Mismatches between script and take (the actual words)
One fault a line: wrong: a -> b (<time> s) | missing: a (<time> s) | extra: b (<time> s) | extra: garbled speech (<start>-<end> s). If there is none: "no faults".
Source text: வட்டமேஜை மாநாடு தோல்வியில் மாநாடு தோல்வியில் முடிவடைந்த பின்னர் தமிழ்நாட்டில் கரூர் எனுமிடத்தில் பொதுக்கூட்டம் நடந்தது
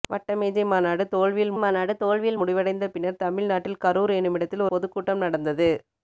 no faults